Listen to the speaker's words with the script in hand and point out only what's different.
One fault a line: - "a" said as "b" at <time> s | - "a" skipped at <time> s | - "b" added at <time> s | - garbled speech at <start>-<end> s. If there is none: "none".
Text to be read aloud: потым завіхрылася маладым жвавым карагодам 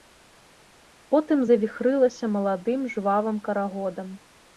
none